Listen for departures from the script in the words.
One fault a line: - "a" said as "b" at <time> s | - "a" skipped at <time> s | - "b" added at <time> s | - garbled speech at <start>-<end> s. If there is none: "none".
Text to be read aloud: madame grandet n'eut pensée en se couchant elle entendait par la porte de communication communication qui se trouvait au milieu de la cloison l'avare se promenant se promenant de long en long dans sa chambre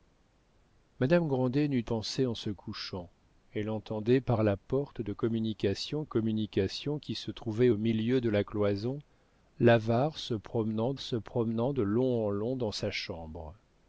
none